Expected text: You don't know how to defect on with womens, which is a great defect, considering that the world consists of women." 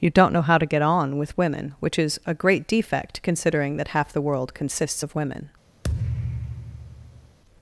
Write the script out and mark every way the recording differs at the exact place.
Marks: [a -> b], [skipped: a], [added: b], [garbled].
You don't know how to [defect -> get] on with [womens, -> women] which is a great defect, considering that [added: half] the world consists of women."